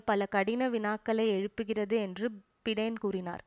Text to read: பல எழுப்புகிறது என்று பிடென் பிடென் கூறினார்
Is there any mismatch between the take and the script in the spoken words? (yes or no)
yes